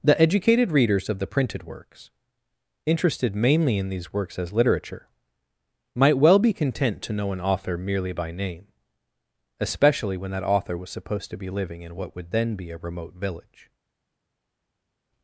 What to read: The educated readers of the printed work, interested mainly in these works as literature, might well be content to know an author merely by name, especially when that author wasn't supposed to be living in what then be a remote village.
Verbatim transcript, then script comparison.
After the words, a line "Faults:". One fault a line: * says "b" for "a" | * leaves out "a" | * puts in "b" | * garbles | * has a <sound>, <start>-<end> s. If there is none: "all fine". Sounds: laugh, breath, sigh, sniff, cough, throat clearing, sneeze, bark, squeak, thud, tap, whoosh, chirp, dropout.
The educated readers of the printed works, interested mainly in these works as literature, might well be content to know an author merely by name, especially when that author was supposed to be living in what would then be a remote village.
Faults:
* says "works" for "work"
* says "was" for "wasn't"
* puts in "would"